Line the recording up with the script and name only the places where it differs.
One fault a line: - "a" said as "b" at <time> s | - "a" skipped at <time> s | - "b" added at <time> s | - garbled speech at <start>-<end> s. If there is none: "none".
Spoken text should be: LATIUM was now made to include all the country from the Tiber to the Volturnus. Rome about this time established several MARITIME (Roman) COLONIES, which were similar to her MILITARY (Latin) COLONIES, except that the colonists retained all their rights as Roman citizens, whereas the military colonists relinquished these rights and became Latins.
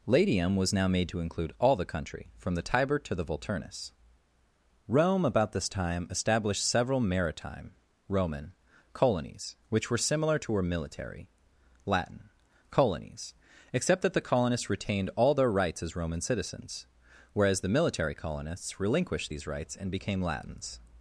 none